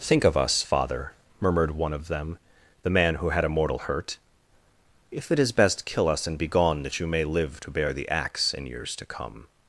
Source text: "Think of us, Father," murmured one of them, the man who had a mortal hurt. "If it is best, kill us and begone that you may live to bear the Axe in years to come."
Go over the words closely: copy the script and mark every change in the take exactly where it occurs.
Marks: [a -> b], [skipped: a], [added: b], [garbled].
"Think of us, Father," murmured one of them, the man who had a mortal hurt. "If it is best, kill us and begone that you may live to bear the Axe in years to come."